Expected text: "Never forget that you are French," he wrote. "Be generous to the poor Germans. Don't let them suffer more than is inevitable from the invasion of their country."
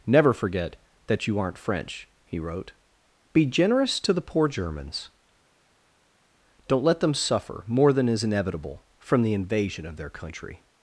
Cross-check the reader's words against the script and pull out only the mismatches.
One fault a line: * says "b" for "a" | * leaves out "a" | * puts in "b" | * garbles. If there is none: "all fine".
* says "aren't" for "are"